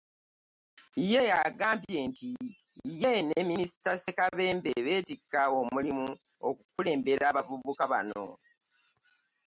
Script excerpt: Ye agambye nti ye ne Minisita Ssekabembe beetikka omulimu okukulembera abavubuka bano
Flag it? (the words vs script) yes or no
no